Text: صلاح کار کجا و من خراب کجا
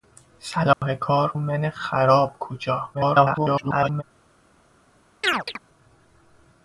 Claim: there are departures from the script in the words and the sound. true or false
true